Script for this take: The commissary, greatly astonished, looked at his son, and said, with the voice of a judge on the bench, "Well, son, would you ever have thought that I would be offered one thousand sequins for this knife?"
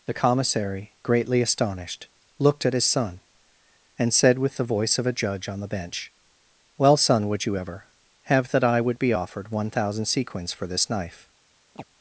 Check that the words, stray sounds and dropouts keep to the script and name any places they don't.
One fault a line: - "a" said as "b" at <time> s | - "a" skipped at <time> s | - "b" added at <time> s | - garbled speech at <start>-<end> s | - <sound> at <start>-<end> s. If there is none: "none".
- "thought" skipped at 8.5 s
- chirp at 11.8-11.8 s